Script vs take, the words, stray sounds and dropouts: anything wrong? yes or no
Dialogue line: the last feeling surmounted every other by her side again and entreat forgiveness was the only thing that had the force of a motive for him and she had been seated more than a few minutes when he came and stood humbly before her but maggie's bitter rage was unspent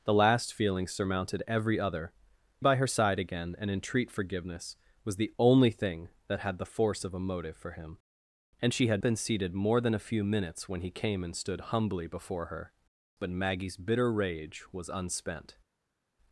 no